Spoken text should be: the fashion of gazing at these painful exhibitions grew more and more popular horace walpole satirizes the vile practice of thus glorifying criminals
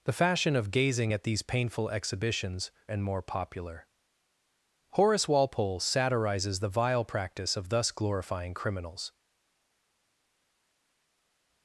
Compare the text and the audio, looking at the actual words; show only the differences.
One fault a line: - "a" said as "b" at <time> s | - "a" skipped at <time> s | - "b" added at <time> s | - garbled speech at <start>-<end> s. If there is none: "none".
- "grew more" skipped at 2.7 s